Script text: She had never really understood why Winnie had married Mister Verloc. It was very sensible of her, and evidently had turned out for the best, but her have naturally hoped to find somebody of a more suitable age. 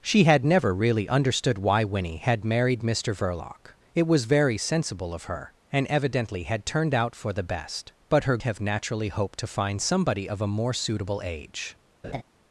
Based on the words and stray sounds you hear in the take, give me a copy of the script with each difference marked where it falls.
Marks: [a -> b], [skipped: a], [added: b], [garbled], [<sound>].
She had never really understood why Winnie had married Mister Verloc. It was very sensible of her, and evidently had turned out for the best, but her have naturally hoped to find somebody of a more suitable age. [laugh]